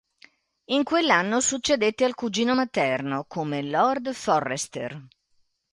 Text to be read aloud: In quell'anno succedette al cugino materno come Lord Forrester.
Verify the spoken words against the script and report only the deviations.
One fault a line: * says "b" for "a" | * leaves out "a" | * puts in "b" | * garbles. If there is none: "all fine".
all fine